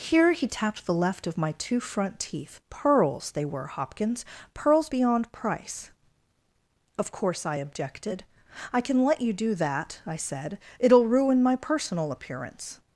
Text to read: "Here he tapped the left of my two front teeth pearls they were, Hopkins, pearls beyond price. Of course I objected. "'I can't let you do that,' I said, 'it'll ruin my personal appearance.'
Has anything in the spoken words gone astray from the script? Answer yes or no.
yes